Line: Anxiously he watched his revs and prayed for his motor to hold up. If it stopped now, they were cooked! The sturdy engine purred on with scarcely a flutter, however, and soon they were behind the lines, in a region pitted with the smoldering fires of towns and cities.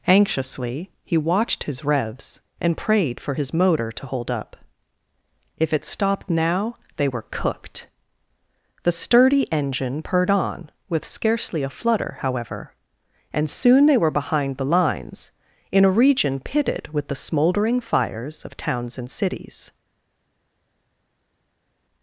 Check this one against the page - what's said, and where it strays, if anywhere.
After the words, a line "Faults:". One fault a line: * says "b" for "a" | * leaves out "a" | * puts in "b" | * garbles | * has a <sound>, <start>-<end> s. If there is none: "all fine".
Anxiously he watched his revs and prayed for his motor to hold up. If it stopped now, they were cooked! The sturdy engine purred on with scarcely a flutter, however, and soon they were behind the lines, in a region pitted with the smoldering fires of towns and cities.
Faults:
all fine